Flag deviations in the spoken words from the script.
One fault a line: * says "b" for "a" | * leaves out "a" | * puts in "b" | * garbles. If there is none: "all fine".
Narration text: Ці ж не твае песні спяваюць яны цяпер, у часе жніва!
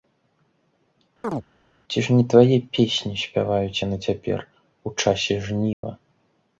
all fine